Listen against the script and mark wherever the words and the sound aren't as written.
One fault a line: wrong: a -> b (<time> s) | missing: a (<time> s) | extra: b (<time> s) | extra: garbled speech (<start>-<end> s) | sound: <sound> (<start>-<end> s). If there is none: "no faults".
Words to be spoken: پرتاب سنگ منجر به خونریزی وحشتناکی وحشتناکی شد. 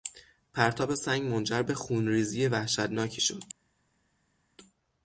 missing: وحشتناکی (3.2 s)